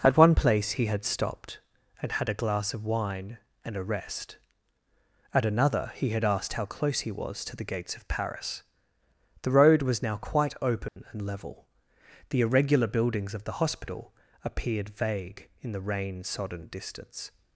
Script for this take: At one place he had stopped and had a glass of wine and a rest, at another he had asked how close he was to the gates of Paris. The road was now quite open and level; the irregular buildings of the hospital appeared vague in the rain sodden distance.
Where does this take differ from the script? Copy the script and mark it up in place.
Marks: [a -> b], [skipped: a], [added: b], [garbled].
At one place he had stopped and had a glass of wine and a rest, at another he had asked how close he was to the gates of Paris. The road was now quite open and level; the irregular buildings of the hospital appeared vague in the rain sodden distance.